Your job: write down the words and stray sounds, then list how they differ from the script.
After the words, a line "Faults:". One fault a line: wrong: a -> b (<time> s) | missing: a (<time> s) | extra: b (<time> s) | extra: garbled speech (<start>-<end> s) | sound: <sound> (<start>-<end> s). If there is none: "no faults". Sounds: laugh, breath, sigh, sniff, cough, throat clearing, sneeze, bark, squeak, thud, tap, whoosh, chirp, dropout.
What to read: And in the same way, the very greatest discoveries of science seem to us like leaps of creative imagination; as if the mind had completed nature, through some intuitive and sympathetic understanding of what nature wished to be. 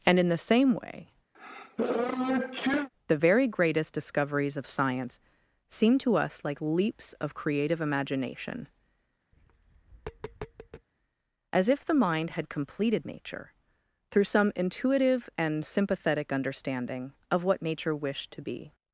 And in the same way, the very greatest discoveries of science seem to us like leaps of creative imagination; as if the mind had completed nature, through some intuitive and sympathetic understanding of what nature wished to be.
Faults:
sound: sneeze (1.3-2.9 s)
sound: tap (9.3-10.9 s)